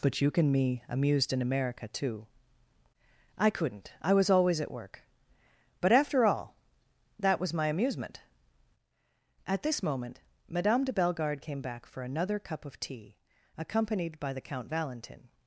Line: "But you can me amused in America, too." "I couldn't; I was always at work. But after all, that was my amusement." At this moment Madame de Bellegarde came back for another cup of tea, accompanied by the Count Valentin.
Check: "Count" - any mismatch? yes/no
no